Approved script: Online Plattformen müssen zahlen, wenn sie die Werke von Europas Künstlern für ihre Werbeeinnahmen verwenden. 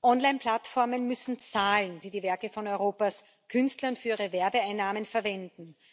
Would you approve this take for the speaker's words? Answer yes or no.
no